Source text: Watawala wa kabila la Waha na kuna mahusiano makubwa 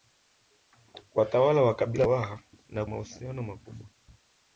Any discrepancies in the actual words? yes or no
yes